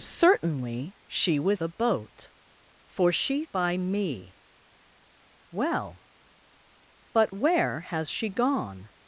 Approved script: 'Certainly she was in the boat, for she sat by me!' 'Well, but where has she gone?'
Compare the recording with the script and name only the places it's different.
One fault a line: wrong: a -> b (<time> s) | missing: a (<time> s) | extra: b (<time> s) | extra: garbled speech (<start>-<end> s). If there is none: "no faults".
missing: in (1.6 s)
missing: sat (3.4 s)